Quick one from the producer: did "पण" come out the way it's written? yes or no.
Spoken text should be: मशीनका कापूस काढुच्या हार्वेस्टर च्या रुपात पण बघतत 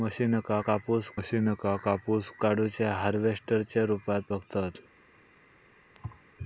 no